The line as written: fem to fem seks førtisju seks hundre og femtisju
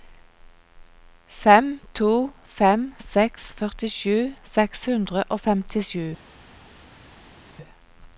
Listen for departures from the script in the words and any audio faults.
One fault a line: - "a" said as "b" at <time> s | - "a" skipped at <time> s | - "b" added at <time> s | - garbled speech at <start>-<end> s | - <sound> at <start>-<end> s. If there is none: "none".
none